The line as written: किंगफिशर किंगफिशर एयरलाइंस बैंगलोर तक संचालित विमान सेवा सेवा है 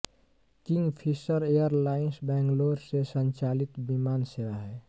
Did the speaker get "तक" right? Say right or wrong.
wrong